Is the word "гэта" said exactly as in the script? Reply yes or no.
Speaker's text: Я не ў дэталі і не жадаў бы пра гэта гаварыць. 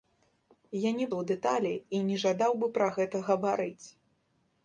yes